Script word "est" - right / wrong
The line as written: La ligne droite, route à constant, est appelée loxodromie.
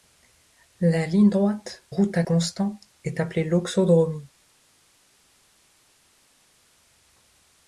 right